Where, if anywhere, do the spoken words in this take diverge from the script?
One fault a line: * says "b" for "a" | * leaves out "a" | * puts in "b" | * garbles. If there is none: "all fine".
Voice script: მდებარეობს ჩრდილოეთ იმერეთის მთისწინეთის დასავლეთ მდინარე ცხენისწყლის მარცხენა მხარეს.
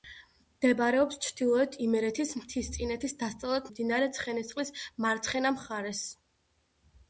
all fine